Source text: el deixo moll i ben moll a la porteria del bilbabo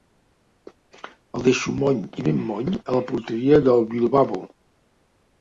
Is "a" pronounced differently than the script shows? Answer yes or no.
no